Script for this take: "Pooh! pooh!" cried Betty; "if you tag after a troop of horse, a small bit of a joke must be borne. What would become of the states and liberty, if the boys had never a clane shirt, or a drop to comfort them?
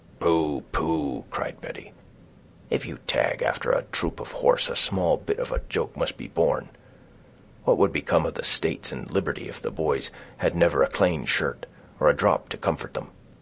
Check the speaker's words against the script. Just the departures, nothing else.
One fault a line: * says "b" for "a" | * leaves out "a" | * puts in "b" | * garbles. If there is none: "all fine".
all fine